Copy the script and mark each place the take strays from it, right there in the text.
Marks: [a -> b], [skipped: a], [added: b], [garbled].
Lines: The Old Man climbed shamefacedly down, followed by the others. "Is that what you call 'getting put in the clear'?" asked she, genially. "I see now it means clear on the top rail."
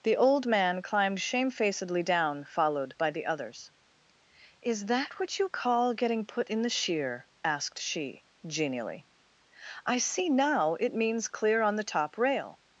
The Old Man climbed shamefacedly down, followed by the others. "Is that what you call 'getting put in the [clear'?" -> sheer] asked she, genially. "I see now it means clear on the top rail."